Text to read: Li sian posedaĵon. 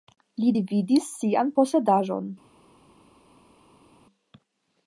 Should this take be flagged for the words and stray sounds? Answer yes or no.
yes